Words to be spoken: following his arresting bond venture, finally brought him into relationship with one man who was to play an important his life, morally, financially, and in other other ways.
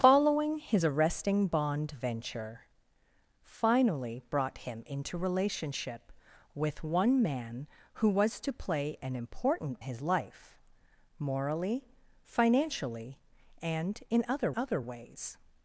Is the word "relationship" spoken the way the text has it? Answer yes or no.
yes